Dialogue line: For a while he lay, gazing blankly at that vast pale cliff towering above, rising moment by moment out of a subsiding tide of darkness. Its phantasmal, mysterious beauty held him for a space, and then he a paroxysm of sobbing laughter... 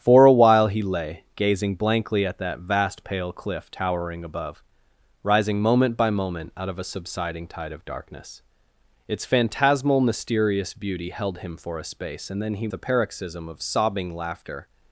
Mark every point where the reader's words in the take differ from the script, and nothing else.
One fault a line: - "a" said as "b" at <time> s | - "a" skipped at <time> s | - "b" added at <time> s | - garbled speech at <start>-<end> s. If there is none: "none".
none